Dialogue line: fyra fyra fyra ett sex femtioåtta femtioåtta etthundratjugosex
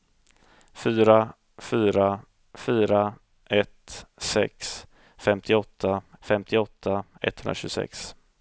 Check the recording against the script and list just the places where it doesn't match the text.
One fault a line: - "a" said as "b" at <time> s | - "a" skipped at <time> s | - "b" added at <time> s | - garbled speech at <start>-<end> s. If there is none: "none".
none